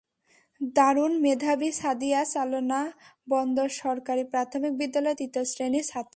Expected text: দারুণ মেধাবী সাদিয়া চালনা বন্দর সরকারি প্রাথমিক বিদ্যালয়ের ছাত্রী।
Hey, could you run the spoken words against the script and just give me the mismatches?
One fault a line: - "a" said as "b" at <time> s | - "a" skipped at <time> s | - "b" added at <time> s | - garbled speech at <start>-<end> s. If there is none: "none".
- "তৃতীয় শ্রেণির" added at 5.2 s